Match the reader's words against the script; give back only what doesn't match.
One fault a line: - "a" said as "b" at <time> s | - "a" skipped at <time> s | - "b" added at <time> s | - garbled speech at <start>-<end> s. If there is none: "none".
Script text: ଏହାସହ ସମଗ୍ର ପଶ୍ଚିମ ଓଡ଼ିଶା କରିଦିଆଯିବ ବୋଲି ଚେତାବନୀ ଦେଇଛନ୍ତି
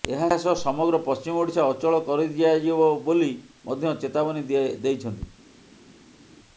- "ଅଚଳ" added at 1.7 s
- "ମଧ୍ୟ" added at 3.6 s